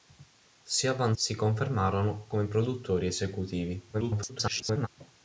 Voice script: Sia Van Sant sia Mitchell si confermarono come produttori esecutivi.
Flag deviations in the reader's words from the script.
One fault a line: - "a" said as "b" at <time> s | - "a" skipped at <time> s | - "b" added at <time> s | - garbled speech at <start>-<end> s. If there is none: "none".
- "Sant sia Mitchell" skipped at 1.1 s
- garbled speech at 3.9-4.9 s